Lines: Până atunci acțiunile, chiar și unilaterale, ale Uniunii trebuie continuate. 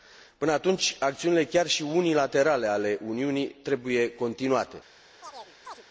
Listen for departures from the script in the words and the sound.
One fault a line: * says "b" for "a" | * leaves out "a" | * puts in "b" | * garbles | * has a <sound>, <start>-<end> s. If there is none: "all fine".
* has a chirp, 5.2-5.8 s